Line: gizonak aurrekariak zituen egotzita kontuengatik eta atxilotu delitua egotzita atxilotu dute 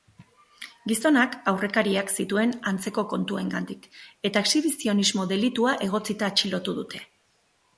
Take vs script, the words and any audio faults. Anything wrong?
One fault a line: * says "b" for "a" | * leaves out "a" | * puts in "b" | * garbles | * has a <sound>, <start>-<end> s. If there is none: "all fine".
* says "antzeko" for "egotzita"
* says "exhibizionismo" for "atxilotu"